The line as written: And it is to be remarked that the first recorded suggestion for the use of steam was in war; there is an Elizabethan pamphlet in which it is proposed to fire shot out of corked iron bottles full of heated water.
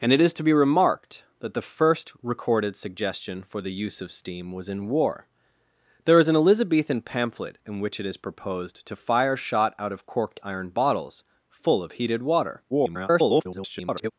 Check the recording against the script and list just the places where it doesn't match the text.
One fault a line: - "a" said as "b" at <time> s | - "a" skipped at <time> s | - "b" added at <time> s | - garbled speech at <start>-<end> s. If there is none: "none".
- garbled speech at 12.7-14.1 s